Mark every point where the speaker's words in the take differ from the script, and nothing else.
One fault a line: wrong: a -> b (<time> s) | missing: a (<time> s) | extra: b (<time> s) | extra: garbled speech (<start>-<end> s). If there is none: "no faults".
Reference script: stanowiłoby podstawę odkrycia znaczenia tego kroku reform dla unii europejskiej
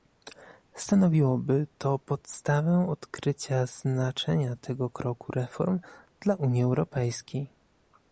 extra: to (1.8 s)